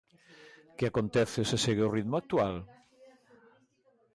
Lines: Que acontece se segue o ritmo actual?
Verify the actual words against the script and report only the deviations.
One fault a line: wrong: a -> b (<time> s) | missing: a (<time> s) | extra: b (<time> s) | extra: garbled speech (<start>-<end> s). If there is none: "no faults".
no faults